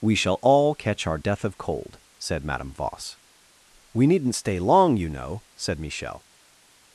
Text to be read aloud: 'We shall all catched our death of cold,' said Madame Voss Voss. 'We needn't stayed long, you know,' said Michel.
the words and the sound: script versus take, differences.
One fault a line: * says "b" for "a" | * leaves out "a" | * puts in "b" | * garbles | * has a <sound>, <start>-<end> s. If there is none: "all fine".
* says "catch" for "catched"
* leaves out "Voss"
* says "stay" for "stayed"